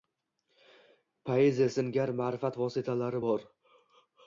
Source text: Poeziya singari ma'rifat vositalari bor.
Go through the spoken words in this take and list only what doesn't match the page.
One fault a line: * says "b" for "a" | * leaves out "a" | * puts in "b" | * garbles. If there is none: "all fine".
all fine